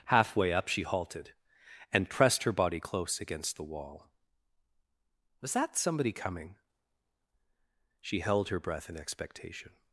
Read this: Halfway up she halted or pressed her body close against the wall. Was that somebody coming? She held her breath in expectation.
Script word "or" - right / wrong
wrong